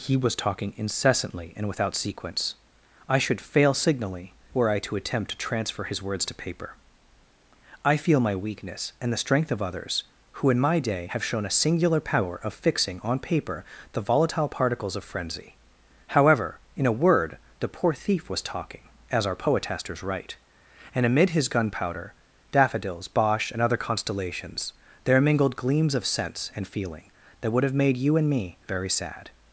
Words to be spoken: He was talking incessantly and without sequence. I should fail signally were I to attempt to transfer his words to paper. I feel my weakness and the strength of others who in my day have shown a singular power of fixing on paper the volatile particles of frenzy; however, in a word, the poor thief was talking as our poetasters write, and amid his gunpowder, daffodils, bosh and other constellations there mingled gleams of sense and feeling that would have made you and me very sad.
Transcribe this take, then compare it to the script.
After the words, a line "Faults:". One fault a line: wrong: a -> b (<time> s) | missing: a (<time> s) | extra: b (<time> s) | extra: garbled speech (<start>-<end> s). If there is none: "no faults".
He was talking incessantly and without sequence. I should fail signally were I to attempt to transfer his words to paper. I feel my weakness and the strength of others who in my day have shown a singular power of fixing on paper the volatile particles of frenzy; however, in a word, the poor thief was talking as our poetasters write, and amid his gunpowder, daffodils, bosh and other constellations there mingled gleams of sense and feeling that would have made you and me very sad.
Faults:
no faults